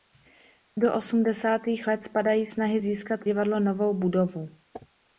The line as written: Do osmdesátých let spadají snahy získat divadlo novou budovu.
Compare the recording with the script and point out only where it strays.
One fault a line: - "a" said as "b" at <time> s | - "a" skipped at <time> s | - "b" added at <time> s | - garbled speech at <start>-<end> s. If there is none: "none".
none